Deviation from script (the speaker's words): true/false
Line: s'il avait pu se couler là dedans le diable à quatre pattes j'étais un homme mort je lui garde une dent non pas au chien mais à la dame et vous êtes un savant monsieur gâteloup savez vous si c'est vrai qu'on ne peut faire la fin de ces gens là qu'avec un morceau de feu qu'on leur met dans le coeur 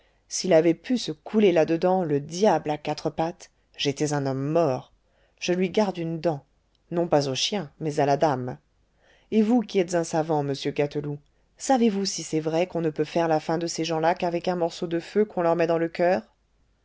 true